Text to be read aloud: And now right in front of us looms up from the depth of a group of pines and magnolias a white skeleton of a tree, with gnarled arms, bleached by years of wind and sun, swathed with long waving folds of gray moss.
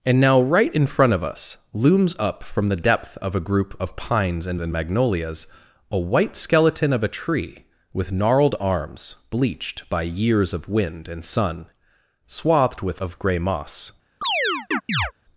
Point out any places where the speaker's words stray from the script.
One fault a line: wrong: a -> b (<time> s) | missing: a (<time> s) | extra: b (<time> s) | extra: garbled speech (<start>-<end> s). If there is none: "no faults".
extra: and (4.6 s)
missing: long waving folds (13.0 s)